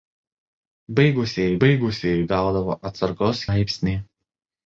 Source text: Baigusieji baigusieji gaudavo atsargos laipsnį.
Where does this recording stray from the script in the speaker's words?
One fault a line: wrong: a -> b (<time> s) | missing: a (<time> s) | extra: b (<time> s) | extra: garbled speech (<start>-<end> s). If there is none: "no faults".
no faults